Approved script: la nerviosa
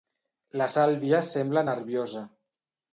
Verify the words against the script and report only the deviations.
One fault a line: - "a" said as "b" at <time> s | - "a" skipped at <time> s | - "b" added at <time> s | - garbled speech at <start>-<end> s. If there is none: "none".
- "sàlvia sembla" added at 0.7 s